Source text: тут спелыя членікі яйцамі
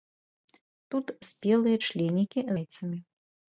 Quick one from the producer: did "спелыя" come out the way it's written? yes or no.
yes